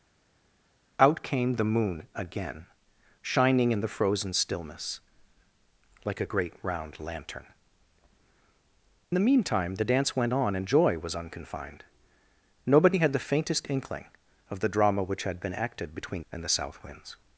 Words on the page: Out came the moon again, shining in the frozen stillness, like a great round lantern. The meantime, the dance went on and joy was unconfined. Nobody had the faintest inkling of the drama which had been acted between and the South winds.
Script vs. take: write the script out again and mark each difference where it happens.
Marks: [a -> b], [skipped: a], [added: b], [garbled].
Out came the moon again, shining in the frozen stillness, like a great round lantern. The meantime, the dance went on and joy was unconfined. Nobody had the faintest inkling of the drama which had been acted between and the South winds.